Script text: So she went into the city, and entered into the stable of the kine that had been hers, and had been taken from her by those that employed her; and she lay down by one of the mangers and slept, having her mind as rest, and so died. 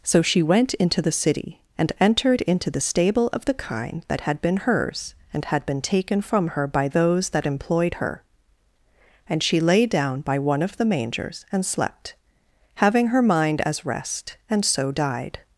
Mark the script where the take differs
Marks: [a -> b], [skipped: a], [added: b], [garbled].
So she went into the city, and entered into the stable of the kine that had been hers, and had been taken from her by those that employed her; and she lay down by one of the mangers and slept, having her mind as rest, and so died.